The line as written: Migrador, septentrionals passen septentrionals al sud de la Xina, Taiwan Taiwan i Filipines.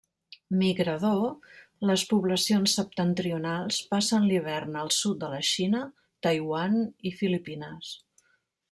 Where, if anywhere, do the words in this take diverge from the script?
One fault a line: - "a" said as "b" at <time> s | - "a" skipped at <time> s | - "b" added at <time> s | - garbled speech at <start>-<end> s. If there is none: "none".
- "les poblacions" added at 1.9 s
- "septentrionals" said as "l'hivern" at 4.3 s
- "Taiwan" skipped at 6.8 s